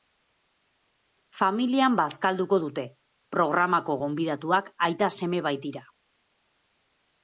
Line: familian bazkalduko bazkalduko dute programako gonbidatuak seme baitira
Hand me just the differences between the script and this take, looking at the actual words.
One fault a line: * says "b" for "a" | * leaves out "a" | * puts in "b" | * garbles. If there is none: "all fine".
* leaves out "bazkalduko"
* puts in "aita"